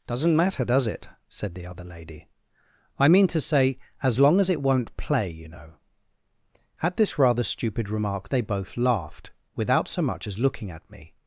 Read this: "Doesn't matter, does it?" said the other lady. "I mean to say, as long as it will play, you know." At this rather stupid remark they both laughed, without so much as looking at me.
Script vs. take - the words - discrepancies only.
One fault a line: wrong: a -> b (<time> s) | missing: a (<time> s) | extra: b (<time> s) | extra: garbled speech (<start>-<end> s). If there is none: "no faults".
wrong: will -> won't (4.6 s)